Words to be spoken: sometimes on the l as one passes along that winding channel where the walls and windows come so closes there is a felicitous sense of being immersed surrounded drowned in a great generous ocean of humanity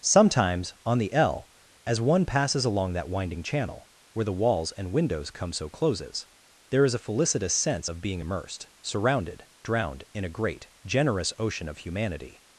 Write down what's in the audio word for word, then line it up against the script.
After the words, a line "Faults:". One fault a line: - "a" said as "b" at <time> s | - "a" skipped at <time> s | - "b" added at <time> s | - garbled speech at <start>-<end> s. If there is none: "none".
sometimes on the l as one passes along that winding channel where the walls and windows come so closes there is a felicitous sense of being immersed surrounded drowned in a great generous ocean of humanity
Faults:
none